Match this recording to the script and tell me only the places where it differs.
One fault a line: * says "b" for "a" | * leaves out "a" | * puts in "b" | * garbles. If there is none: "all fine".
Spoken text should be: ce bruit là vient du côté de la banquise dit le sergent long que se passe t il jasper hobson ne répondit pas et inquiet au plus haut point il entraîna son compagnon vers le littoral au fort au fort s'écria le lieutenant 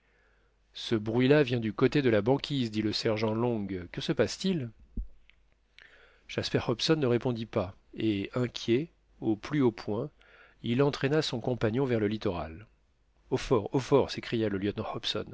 all fine